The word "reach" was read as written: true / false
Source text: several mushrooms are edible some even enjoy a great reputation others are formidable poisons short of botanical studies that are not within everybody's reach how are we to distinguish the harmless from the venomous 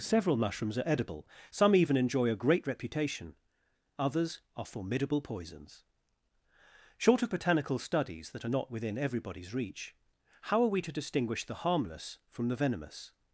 true